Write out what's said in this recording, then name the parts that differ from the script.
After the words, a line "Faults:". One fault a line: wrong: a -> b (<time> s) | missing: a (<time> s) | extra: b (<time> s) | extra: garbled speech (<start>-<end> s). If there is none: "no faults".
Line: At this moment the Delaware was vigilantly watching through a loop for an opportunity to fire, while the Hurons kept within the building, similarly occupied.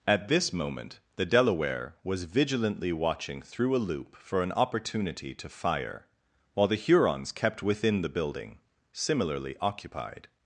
At this moment the Delaware was vigilantly watching through a loop for an opportunity to fire, while the Hurons kept within the building, similarly occupied.
Faults:
no faults